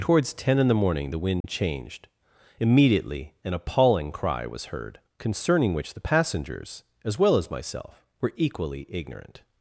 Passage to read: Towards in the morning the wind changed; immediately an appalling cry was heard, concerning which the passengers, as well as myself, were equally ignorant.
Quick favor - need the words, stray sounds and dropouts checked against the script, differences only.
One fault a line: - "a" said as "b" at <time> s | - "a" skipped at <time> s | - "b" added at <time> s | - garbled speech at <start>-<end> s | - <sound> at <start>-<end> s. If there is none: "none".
- "ten" added at 0.3 s
- dropout at 1.4-1.4 s